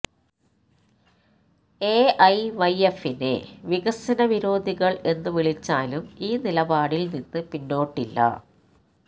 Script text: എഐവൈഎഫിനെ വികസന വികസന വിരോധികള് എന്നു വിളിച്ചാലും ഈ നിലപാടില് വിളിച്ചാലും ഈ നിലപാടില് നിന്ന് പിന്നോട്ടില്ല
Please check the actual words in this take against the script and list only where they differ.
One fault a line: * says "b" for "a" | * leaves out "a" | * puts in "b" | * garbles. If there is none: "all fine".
* leaves out "വികസന"
* leaves out "വിളിച്ചാലും ഈ നിലപാടില്"